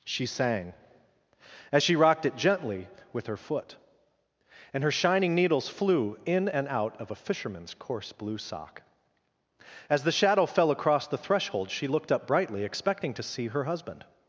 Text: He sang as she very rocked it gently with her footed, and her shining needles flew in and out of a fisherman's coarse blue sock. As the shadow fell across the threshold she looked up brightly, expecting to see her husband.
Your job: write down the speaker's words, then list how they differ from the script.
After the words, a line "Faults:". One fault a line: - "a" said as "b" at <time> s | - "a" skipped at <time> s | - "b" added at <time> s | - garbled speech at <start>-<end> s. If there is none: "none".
She sang as she rocked it gently with her foot, and her shining needles flew in and out of a fisherman's coarse blue sock. As the shadow fell across the threshold she looked up brightly, expecting to see her husband.
Faults:
- "He" said as "She" at 0.0 s
- "very" skipped at 1.9 s
- "footed" said as "foot" at 3.4 s